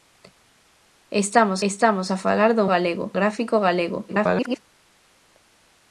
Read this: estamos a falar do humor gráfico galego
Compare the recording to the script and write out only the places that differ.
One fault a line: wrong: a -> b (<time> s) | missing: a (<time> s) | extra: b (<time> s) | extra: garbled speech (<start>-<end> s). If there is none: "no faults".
extra: estamos (1.7 s)
wrong: humor -> galego (2.7 s)
extra: garbled speech (4.1-4.6 s)